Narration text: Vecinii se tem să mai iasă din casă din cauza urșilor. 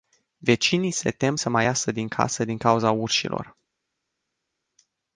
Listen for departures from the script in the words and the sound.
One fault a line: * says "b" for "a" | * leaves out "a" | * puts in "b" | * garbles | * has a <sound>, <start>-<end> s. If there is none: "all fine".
all fine